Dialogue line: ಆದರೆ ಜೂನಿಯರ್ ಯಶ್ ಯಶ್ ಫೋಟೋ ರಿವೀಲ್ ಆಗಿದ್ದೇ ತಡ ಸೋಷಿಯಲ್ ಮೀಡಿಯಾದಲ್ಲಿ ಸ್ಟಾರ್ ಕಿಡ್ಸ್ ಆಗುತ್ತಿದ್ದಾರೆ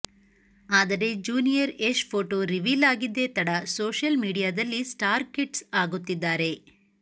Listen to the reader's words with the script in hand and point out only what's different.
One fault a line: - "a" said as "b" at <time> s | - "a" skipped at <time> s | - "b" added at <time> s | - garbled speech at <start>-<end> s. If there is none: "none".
- "ಯಶ್" skipped at 2.0 s